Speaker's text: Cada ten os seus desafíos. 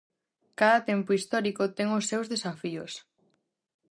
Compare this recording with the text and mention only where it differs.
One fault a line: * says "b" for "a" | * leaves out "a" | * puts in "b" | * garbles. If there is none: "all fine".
* puts in "tempo histórico"